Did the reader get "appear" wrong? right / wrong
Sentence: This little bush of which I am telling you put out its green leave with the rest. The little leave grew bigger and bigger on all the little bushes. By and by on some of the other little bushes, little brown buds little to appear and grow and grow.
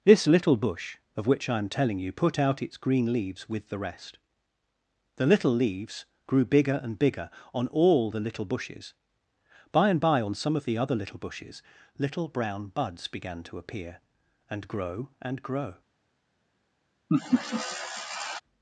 right